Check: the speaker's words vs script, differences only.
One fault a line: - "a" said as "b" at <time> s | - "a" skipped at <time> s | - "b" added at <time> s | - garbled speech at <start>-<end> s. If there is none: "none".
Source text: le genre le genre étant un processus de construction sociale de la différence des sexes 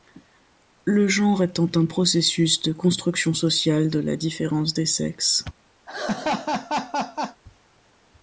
- "le genre" skipped at 1.4 s